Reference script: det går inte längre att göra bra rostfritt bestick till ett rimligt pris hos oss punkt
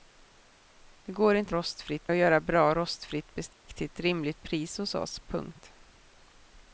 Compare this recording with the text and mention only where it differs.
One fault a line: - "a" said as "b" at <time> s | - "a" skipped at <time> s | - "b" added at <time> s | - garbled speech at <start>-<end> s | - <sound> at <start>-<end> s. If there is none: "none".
- "längre" said as "rostfritt" at 1.5 s
- dropout at 3.5-3.6 s